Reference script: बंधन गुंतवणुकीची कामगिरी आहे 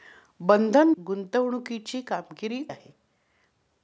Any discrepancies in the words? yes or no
no